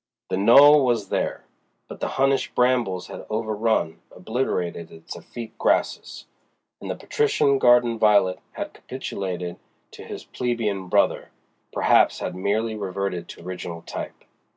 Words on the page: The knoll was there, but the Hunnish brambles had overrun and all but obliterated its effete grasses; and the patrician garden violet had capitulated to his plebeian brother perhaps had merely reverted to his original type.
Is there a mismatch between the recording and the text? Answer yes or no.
yes